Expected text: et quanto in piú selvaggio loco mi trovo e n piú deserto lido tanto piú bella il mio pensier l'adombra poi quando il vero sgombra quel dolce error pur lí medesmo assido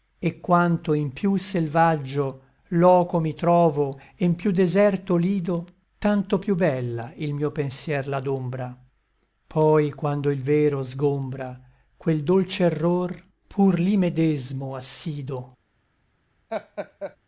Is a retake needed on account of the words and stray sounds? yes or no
yes